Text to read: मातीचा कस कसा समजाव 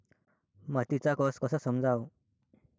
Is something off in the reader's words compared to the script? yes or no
no